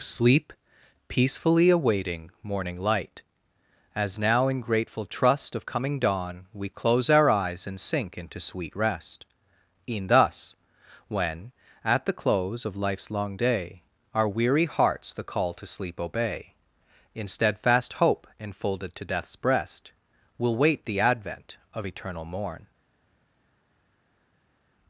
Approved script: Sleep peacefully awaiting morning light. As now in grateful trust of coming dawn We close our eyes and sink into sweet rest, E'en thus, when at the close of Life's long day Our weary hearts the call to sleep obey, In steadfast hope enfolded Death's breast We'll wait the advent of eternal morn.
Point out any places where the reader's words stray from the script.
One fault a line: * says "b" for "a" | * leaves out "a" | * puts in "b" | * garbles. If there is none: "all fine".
* puts in "to"